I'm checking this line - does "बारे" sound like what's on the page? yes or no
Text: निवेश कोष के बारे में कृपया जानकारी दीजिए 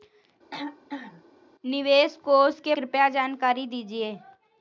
no